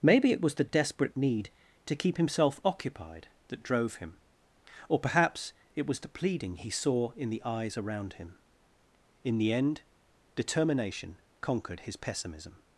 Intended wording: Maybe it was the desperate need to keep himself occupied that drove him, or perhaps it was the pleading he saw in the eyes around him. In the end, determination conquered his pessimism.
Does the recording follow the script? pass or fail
pass